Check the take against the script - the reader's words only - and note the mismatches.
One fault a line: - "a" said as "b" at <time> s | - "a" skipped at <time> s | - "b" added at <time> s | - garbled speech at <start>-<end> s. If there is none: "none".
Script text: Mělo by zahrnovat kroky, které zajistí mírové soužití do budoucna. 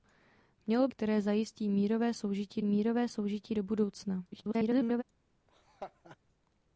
- "by zahrnovat kroky které zajistí" said as "které zajistí mírové soužití" at 0.9 s
- garbled speech at 4.3-5.0 s